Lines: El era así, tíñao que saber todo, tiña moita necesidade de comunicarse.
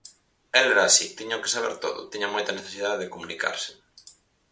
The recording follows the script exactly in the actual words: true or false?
true